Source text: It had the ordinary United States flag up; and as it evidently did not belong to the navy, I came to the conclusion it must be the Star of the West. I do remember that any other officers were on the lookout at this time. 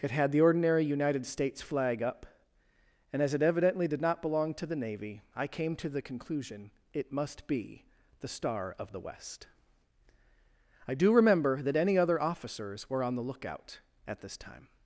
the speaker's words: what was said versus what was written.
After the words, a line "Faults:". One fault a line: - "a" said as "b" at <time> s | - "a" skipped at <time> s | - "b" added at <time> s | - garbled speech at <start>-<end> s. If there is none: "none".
It had the ordinary United States flag up; and as it evidently did not belong to the navy, I came to the conclusion it must be the Star of the West. I do remember that any other officers were on the lookout at this time.
Faults:
none